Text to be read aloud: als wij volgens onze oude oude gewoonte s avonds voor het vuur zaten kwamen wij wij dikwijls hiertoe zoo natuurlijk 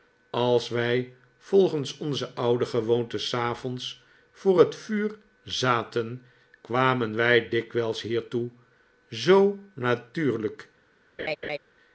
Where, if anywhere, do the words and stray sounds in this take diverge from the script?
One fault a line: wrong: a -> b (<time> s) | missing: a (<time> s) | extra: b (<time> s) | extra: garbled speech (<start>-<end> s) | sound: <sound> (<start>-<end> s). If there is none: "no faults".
missing: oude (2.6 s)
missing: wij (7.5 s)
sound: laugh (11.2-11.6 s)